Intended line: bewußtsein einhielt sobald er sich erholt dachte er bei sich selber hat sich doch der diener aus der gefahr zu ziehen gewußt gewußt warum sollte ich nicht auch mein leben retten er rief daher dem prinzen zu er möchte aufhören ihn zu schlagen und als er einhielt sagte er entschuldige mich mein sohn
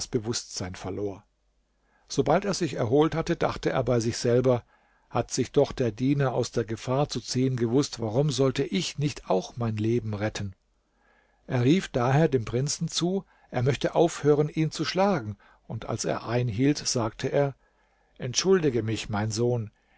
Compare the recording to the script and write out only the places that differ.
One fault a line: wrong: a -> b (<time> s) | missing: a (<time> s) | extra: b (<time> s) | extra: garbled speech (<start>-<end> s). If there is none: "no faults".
wrong: einhielt -> verlor (0.8 s)
extra: hatte (3.1 s)
missing: gewußt (8.0 s)